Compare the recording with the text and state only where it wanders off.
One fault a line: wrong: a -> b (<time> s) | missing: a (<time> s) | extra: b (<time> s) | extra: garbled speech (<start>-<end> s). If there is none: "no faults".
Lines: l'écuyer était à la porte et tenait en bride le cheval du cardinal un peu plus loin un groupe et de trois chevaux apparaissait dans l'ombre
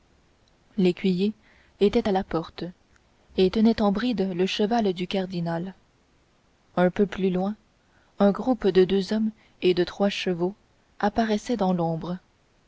extra: de deux hommes (8.7 s)